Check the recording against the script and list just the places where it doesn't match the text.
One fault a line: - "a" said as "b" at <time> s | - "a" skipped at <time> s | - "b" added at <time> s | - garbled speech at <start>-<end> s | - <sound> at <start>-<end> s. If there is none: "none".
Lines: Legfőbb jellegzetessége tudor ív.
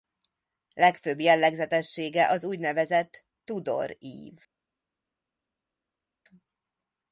- "az úgynevezett" added at 2.3 s